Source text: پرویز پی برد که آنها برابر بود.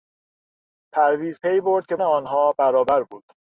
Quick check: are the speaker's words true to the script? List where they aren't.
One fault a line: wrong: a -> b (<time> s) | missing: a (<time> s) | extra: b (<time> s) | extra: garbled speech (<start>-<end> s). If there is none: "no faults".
no faults